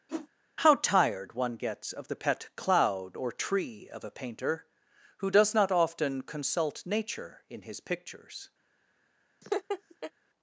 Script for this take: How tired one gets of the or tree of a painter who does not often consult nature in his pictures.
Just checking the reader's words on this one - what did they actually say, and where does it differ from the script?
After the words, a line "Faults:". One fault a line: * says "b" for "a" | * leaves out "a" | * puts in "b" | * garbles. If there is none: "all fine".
How tired one gets of the pet cloud or tree of a painter who does not often consult nature in his pictures.
Faults:
* puts in "pet cloud"